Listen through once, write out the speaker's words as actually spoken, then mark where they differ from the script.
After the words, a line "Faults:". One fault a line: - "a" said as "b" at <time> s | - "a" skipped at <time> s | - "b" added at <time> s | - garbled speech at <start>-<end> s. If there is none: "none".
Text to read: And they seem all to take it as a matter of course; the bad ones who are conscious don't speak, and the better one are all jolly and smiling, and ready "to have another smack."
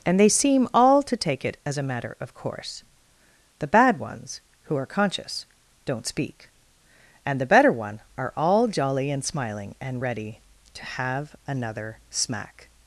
And they seem all to take it as a matter of course; the bad ones who are conscious don't speak, and the better one are all jolly and smiling, and ready "to have another smack."
Faults:
none